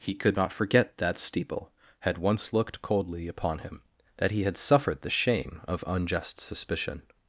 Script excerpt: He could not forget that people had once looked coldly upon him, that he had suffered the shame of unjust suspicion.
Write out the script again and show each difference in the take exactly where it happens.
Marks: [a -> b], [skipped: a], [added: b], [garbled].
He could not forget that [people -> steeple] had once looked coldly upon him, that he had suffered the shame of unjust suspicion.